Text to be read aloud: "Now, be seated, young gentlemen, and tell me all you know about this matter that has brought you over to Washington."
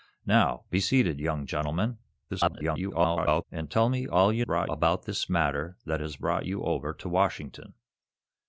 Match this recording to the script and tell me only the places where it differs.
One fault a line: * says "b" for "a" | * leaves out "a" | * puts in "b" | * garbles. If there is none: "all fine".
* garbles
* says "brought" for "know"